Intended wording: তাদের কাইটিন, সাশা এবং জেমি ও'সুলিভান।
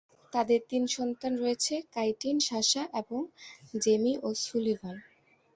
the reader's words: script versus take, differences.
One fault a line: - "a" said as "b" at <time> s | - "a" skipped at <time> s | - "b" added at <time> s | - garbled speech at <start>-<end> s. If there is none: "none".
- "তিন সন্তান রয়েছে" added at 0.7 s